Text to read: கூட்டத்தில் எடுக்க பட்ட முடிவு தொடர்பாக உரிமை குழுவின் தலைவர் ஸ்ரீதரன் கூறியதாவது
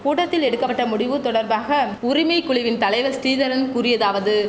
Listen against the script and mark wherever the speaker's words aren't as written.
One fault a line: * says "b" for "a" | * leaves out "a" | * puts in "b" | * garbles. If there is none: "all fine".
all fine